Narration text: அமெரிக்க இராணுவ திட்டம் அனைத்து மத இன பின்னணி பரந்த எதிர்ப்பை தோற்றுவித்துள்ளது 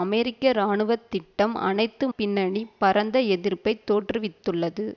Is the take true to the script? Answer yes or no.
no